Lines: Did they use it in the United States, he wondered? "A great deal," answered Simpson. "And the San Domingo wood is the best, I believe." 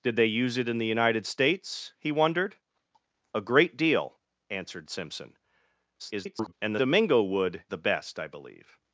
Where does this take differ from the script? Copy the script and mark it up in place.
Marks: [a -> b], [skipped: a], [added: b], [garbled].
Did they use it in the United States, he wondered? "A great deal," answered Simpson. [garbled] "And the [skipped: San] Domingo wood [skipped: is] the best, I believe."